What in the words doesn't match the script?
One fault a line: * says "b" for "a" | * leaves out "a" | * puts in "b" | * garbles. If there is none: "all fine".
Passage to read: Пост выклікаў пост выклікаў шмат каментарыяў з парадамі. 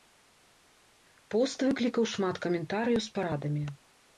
* leaves out "пост выклікаў"